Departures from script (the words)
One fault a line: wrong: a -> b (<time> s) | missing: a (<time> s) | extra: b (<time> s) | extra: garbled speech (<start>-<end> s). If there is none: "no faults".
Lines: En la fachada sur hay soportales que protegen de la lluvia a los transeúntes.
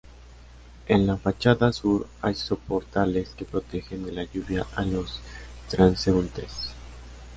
no faults